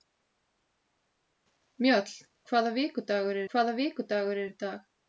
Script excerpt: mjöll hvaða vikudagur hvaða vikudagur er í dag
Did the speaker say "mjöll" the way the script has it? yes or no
yes